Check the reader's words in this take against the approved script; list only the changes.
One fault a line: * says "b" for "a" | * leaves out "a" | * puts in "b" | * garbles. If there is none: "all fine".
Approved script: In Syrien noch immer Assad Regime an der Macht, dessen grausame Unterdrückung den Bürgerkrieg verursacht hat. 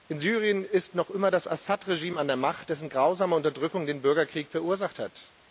* puts in "ist"
* puts in "das"